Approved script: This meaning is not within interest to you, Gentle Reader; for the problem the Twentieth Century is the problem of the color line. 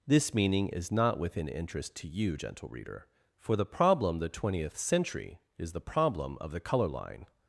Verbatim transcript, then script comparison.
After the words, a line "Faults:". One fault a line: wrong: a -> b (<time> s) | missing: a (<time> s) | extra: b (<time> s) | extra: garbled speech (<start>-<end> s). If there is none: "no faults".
This meaning is not within interest to you, Gentle Reader; for the problem the Twentieth Century is the problem of the color line.
Faults:
no faults